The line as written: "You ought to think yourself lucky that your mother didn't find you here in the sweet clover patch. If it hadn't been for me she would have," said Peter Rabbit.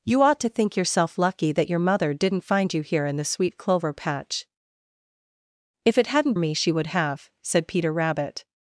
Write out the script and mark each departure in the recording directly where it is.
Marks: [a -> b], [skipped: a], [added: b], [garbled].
"You ought to think yourself lucky that your mother didn't find you here in the sweet clover patch. If it hadn't [skipped: been for] me she would have," said Peter Rabbit.